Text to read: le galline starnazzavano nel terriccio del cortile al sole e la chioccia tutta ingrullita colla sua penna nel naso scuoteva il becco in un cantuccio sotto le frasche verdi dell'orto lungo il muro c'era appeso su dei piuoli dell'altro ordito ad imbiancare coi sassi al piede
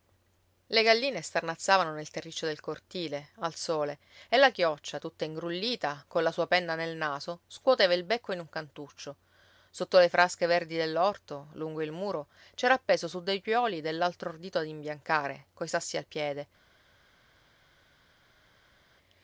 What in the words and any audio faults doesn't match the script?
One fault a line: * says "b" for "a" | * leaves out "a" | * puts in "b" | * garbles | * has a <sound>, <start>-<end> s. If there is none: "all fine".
all fine